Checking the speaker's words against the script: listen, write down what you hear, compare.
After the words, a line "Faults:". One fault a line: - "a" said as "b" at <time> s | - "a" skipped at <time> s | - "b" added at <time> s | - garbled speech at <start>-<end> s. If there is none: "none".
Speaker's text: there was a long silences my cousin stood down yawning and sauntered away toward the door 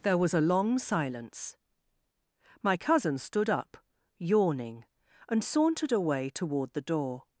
there was a long silence my cousin stood up yawning and sauntered away toward the door
Faults:
- "silences" said as "silence" at 0.8 s
- "down" said as "up" at 3.5 s